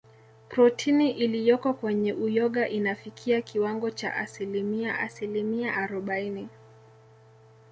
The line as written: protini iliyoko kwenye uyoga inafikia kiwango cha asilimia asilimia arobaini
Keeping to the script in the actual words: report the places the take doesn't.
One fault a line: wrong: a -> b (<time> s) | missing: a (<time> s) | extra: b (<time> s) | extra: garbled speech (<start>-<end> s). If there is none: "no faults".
no faults